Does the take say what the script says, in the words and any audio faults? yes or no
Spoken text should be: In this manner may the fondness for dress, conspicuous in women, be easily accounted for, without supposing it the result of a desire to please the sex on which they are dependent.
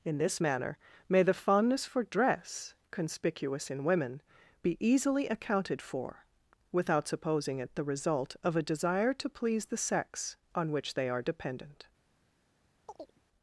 no